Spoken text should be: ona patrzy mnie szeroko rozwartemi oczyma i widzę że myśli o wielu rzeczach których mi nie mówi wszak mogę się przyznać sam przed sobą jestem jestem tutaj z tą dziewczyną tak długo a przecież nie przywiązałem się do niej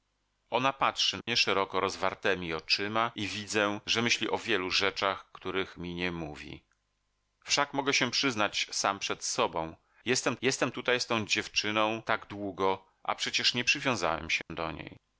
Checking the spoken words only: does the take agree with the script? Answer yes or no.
yes